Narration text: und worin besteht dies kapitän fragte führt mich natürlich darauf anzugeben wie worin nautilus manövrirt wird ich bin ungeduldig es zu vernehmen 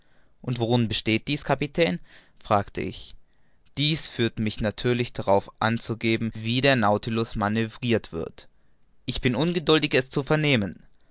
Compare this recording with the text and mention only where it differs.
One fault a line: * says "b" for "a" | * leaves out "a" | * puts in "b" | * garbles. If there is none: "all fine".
* puts in "ich dies"
* says "der" for "worin"